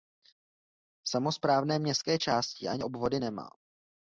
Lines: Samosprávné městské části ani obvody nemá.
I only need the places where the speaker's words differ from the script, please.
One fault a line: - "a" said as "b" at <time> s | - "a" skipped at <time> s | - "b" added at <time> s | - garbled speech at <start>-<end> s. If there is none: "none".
none